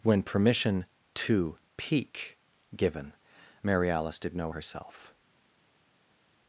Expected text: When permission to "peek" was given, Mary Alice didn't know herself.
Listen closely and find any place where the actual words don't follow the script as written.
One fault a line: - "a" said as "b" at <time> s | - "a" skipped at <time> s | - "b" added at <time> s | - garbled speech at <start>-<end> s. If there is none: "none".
- "was" skipped at 2.4 s
- "didn't" said as "did" at 4.2 s